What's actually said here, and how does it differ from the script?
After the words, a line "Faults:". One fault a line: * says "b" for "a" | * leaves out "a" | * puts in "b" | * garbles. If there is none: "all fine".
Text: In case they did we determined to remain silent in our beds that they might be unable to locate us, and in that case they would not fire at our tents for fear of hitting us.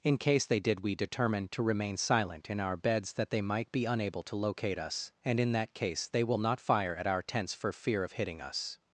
In case they did we determined to remain silent in our beds that they might be unable to locate us, and in that case they will not fire at our tents for fear of hitting us.
Faults:
* says "will" for "would"